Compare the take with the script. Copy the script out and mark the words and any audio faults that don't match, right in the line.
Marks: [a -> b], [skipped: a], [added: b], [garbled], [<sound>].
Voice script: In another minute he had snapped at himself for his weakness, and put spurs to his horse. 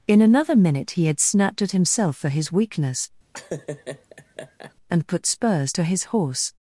In another minute he had snapped at himself for his weakness, [laugh] and put spurs to his horse.